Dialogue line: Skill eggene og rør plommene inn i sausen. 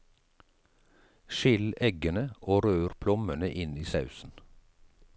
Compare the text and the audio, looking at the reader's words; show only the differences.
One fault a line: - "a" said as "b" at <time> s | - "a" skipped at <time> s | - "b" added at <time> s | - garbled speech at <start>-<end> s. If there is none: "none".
none